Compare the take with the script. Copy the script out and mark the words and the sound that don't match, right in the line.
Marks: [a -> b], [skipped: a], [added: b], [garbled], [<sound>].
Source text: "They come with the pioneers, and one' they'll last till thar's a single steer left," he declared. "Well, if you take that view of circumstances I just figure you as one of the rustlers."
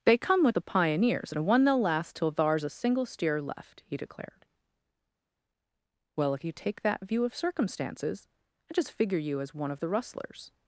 "They come with the pioneers, and one' they'll last till thar's a single steer left," he declared. "Well, if you take that view of circumstances I just figure you as one of the rustlers."